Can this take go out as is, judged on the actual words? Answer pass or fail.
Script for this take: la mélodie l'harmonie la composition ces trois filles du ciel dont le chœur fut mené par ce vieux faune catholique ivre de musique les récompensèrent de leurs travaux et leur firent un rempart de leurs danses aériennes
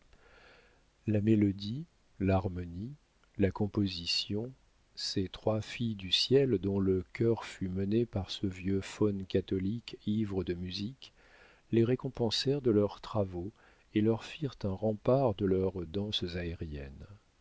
pass